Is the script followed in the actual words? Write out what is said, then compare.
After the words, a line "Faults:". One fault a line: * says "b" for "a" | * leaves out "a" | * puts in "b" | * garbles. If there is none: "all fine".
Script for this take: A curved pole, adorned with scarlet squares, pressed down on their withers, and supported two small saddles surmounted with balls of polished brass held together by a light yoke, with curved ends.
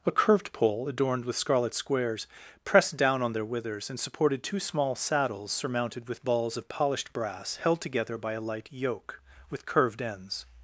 A curved pole, adorned with scarlet squares, pressed down on their withers, and supported two small saddles surmounted with balls of polished brass held together by a light yoke, with curved ends.
Faults:
all fine